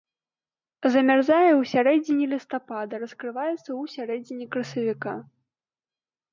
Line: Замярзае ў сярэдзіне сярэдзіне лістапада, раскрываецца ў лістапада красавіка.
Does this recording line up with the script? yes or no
no